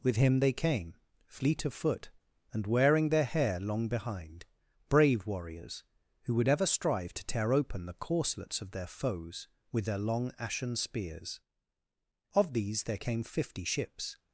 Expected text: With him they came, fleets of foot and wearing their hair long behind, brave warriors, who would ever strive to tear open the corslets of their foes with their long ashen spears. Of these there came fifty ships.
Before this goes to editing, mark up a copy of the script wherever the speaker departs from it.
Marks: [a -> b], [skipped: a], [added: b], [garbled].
With him they came, [fleets -> fleet] of foot and wearing their hair long behind, brave warriors, who would ever strive to tear open the corslets of their foes with their long ashen spears. Of these there came fifty ships.